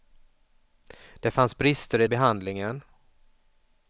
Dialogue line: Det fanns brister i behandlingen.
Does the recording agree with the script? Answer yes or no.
yes